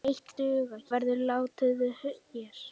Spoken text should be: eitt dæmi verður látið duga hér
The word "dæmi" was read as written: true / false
false